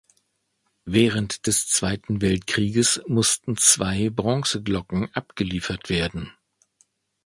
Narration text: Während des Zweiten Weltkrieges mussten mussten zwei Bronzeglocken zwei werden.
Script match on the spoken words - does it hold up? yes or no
no